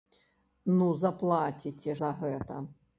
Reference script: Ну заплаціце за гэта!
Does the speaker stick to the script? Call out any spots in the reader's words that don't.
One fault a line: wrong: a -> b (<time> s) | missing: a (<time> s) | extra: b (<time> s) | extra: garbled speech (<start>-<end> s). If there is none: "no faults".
no faults